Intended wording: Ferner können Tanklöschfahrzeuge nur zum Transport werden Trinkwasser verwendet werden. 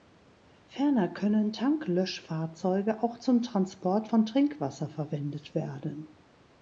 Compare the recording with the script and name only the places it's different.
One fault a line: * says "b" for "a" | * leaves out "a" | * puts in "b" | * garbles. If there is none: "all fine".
* says "auch" for "nur"
* says "von" for "werden"